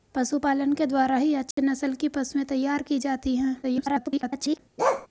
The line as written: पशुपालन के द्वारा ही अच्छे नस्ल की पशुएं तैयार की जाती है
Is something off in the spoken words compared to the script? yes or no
yes